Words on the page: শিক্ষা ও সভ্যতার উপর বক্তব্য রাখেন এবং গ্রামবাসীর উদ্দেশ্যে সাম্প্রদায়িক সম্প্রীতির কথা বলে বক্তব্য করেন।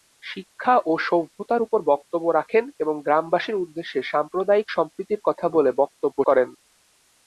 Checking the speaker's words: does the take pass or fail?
pass